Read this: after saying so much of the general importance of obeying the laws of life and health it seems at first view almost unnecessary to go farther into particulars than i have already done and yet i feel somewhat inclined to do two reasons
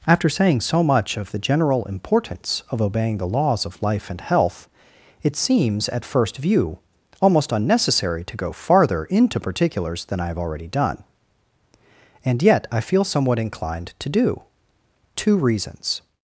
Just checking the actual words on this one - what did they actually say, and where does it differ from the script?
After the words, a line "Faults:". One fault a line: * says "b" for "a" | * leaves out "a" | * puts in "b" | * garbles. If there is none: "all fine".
after saying so much of the general importance of obeying the laws of life and health it seems at first view almost unnecessary to go farther into particulars than i have already done and yet i feel somewhat inclined to do two reasons
Faults:
all fine